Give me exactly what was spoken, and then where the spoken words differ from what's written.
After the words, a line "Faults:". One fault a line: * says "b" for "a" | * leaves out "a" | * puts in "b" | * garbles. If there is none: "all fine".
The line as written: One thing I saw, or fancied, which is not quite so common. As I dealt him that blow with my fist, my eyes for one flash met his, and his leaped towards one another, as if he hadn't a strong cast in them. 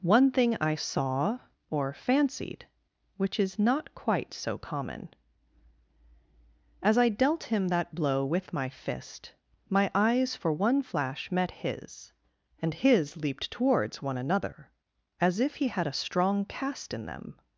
One thing I saw, or fancied, which is not quite so common. As I dealt him that blow with my fist, my eyes for one flash met his, and his leaped towards one another, as if he had a strong cast in them.
Faults:
* says "had" for "hadn't"